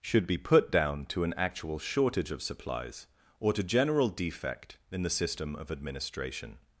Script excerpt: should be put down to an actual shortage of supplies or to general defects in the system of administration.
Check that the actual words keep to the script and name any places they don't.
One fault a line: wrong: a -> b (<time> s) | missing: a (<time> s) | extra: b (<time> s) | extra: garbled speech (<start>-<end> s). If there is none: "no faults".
wrong: defects -> defect (4.1 s)